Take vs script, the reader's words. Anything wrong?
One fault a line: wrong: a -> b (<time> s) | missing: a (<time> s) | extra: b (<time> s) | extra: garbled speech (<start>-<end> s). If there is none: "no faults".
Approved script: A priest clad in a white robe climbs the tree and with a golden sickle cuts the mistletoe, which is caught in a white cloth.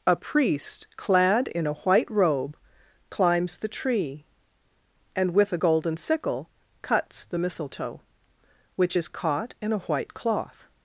no faults